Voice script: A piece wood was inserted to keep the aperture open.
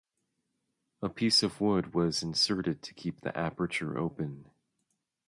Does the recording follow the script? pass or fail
fail